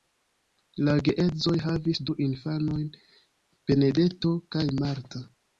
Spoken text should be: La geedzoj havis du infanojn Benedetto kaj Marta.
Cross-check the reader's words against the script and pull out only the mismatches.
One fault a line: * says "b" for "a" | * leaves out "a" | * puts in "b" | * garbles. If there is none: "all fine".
all fine